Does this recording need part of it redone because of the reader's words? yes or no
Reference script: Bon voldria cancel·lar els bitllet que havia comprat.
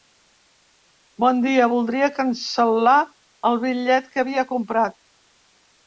yes